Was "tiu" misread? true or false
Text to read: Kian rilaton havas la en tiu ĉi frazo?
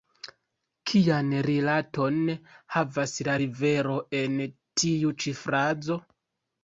false